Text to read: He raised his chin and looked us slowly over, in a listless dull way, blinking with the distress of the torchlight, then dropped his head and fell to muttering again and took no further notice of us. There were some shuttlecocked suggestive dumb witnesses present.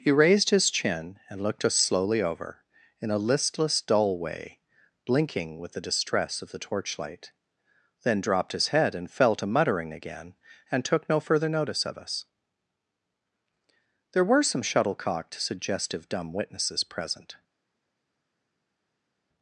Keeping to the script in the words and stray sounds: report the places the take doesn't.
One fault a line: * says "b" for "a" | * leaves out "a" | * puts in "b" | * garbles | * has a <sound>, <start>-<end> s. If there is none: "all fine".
all fine